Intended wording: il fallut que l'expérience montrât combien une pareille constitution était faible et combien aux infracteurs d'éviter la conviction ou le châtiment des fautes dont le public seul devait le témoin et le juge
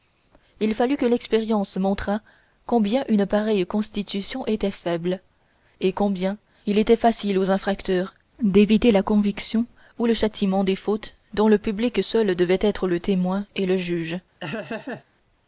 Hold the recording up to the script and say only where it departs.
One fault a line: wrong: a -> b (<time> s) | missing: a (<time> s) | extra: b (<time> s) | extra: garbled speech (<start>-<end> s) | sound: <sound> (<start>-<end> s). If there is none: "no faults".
extra: il était facile (6.7 s)
extra: être (12.6 s)
sound: laugh (14.4-15.0 s)